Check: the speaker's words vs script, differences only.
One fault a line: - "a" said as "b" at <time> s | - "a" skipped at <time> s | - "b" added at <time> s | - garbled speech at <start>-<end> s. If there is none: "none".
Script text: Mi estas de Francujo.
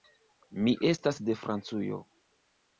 none